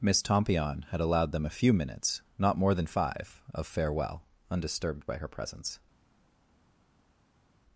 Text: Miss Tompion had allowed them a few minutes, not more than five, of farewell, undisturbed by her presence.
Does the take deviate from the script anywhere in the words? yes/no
no